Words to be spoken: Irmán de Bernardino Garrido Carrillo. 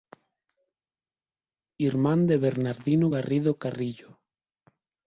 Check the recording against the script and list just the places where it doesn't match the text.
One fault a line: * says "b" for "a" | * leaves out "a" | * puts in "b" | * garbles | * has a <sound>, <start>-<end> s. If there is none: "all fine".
all fine